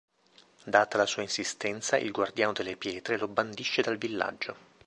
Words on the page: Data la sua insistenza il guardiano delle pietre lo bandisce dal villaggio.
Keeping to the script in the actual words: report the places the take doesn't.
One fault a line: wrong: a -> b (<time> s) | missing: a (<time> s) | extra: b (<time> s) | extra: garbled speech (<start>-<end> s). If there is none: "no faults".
no faults